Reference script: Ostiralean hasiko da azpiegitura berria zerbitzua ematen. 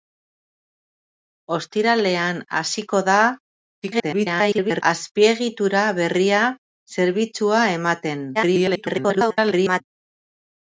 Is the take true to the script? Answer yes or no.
no